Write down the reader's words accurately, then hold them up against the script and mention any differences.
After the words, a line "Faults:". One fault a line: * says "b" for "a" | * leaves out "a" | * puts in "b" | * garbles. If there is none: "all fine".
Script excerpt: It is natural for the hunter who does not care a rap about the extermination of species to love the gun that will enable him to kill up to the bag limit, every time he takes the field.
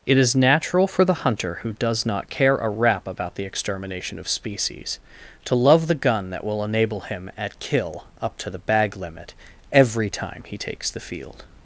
It is natural for the hunter who does not care a rap about the extermination of species to love the gun that will enable him at kill up to the bag limit, every time he takes the field.
Faults:
* says "at" for "to"